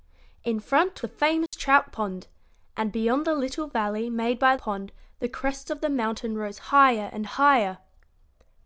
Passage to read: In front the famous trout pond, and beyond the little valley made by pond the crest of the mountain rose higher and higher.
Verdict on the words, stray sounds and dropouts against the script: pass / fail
fail